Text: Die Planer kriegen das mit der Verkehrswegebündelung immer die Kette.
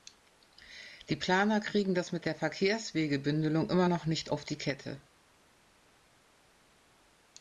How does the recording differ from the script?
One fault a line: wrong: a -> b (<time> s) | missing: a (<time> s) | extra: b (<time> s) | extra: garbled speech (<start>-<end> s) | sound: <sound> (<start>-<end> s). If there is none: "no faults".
extra: noch nicht auf (3.9 s)